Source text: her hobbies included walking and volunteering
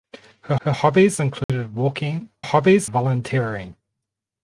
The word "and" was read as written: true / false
false